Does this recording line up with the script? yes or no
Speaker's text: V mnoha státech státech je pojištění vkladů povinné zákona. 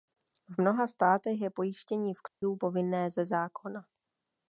no